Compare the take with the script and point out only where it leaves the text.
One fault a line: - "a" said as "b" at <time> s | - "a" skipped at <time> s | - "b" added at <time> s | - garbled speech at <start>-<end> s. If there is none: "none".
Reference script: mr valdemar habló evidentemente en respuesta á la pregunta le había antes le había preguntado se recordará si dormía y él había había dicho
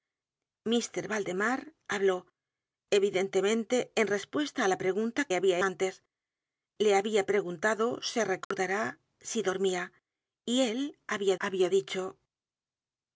none